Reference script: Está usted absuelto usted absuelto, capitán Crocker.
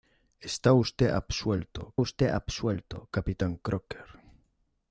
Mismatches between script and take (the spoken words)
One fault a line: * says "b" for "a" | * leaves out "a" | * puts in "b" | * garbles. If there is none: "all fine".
all fine